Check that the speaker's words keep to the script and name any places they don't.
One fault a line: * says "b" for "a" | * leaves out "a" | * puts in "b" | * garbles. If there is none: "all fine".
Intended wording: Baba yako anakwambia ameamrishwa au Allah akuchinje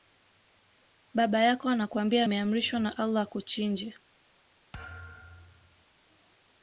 * says "na" for "au"